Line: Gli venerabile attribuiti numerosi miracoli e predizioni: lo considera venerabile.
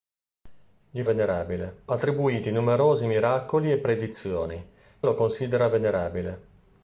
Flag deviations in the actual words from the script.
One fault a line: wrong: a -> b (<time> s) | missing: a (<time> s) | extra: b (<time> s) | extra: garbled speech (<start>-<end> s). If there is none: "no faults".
no faults